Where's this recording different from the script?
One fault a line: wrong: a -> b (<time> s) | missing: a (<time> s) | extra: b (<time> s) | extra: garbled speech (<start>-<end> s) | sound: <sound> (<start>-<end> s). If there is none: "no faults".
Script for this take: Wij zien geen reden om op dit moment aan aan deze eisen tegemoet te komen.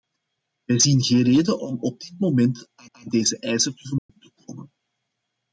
sound: dropout (4.0-4.1 s)